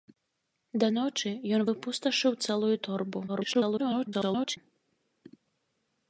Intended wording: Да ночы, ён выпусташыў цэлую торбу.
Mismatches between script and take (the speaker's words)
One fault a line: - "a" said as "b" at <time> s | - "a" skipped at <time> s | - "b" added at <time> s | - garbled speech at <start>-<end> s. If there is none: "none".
- garbled speech at 3.3-4.6 s